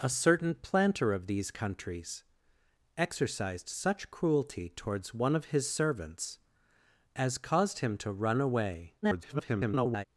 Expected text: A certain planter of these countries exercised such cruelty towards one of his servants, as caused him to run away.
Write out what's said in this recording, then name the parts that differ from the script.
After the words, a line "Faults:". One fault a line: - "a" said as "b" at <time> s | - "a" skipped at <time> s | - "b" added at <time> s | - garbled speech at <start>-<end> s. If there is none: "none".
A certain planter of these countries exercised such cruelty towards one of his servants, as caused him to run away. [garbled]
Faults:
- garbled speech at 9.0-10.1 s